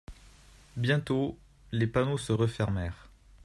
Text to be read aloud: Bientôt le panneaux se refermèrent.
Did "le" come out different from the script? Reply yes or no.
yes